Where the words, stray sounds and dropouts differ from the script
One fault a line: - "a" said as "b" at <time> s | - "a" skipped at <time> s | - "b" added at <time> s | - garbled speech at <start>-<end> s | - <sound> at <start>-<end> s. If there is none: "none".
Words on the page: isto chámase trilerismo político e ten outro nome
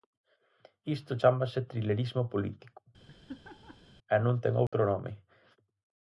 - laugh at 3.0-3.9 s
- "non" added at 4.2 s
- dropout at 4.7-4.7 s